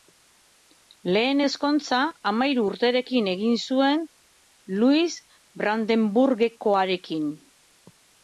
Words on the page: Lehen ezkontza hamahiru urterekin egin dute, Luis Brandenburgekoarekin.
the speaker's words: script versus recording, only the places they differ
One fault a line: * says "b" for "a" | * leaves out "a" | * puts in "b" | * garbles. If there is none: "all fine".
* says "zuen" for "dute"